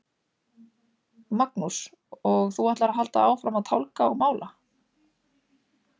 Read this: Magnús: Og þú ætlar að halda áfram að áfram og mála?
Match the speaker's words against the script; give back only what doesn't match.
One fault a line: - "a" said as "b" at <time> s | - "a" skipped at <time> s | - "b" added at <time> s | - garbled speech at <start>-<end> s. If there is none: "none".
- "áfram" said as "tálga" at 3.7 s